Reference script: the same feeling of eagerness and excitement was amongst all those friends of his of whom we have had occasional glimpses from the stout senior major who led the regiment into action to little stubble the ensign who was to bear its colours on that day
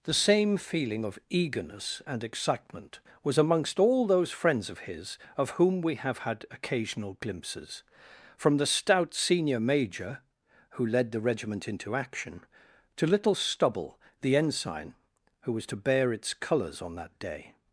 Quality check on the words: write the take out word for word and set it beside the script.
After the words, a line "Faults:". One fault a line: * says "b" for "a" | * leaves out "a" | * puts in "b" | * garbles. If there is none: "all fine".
the same feeling of eagerness and excitement was amongst all those friends of his of whom we have had occasional glimpses from the stout senior major who led the regiment into action to little stubble the ensign who was to bear its colours on that day
Faults:
all fine